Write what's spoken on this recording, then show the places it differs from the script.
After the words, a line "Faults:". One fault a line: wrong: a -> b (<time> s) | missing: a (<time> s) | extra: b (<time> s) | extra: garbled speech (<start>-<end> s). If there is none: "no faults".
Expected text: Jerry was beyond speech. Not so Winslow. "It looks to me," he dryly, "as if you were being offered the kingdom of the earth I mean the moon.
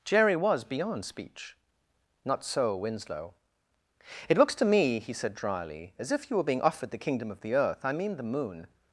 Jerry was beyond speech. Not so Winslow. "It looks to me," he said dryly, "as if you were being offered the kingdom of the earth I mean the moon.
Faults:
extra: said (5.1 s)